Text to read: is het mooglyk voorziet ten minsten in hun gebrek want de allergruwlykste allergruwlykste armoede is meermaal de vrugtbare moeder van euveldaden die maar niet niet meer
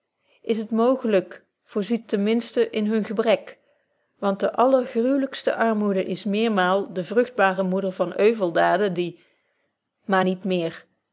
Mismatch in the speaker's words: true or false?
true